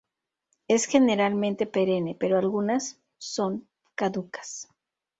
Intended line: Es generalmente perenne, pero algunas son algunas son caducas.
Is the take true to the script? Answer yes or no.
no